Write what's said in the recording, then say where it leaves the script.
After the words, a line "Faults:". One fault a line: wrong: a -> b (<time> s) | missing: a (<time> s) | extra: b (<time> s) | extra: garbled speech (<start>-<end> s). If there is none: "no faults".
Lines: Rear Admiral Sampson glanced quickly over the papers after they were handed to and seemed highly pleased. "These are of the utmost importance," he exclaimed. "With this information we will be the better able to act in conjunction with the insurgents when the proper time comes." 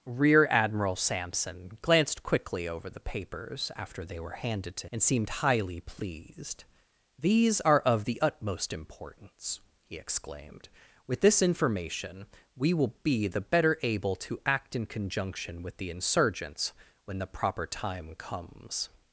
Rear Admiral Sampson glanced quickly over the papers after they were handed to and seemed highly pleased. "These are of the utmost importance," he exclaimed. "With this information we will be the better able to act in conjunction with the insurgents when the proper time comes."
Faults:
no faults